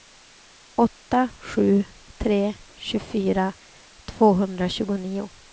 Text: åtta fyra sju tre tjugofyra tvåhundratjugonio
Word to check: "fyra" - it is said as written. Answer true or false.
false